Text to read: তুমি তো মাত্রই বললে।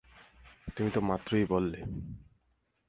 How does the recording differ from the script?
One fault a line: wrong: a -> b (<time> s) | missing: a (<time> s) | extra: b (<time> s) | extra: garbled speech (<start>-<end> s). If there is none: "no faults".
no faults